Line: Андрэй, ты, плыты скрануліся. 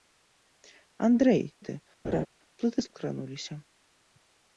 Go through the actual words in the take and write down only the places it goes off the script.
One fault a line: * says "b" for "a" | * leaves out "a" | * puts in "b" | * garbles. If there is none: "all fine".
all fine